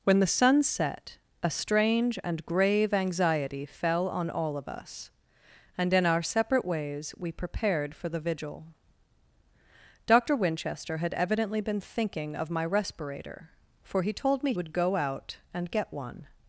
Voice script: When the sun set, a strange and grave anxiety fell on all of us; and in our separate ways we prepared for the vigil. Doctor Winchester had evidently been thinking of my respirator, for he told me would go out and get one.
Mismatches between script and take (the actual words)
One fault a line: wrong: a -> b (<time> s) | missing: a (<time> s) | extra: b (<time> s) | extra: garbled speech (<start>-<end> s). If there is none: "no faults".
no faults